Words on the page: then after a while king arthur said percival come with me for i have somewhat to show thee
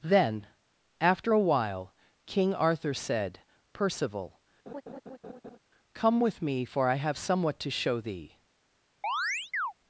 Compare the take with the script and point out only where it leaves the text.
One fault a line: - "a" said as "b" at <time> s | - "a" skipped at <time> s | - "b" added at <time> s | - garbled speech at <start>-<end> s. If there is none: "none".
none